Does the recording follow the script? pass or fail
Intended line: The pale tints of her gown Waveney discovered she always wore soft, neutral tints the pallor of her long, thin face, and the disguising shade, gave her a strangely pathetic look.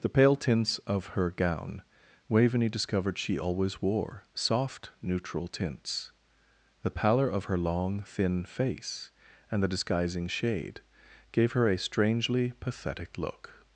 pass